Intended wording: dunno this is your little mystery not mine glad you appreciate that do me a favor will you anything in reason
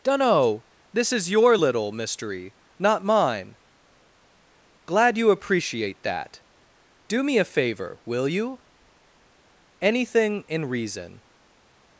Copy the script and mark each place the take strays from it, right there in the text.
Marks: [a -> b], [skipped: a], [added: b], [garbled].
dunno this is your little mystery not mine glad you appreciate that do me a favor will you anything in reason